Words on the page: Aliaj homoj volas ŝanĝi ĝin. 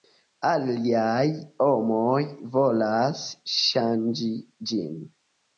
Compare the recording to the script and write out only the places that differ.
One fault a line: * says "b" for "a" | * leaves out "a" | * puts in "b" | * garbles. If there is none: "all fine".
all fine